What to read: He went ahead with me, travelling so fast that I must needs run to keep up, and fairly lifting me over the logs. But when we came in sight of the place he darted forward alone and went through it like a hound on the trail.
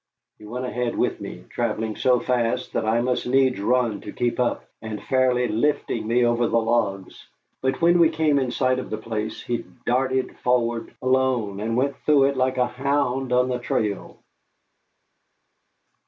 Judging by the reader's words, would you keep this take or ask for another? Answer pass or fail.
pass